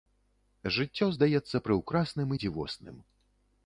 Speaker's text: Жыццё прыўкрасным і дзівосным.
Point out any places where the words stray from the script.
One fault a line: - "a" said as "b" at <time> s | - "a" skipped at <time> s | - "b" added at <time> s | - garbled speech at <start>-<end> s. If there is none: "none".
- "здаецца" added at 1.2 s